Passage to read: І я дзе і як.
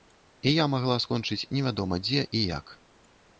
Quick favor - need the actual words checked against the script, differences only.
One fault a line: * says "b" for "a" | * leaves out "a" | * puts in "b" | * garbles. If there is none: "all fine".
* puts in "магла скончыць невядома"